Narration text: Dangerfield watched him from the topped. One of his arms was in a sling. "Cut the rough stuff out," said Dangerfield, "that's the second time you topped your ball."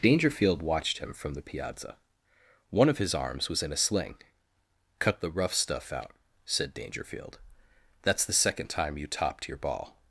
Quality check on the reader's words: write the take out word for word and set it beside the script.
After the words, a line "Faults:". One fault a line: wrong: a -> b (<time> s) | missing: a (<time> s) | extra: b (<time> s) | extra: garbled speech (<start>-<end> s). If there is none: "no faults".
Dangerfield watched him from the piazza. One of his arms was in a sling. "Cut the rough stuff out," said Dangerfield, "that's the second time you topped your ball."
Faults:
wrong: topped -> piazza (1.4 s)